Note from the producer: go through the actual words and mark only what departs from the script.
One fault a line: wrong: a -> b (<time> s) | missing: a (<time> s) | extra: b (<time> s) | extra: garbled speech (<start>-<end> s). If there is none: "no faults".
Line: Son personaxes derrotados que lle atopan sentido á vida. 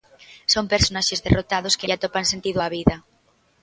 no faults